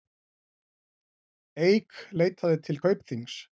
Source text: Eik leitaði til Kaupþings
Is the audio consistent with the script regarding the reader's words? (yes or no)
yes